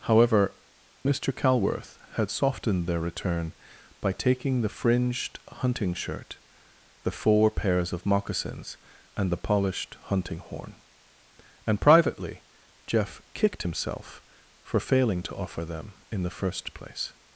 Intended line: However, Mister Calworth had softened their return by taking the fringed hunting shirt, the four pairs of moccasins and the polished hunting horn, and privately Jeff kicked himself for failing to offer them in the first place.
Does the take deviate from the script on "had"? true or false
false